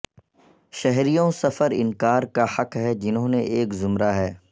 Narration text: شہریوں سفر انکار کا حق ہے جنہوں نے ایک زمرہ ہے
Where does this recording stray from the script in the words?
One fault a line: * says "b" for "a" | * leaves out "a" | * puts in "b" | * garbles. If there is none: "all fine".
all fine